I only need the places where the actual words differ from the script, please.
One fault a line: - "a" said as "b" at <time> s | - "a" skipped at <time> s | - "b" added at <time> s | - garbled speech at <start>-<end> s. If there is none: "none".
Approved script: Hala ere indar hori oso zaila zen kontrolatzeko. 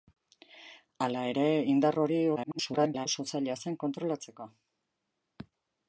- garbled speech at 2.4-3.1 s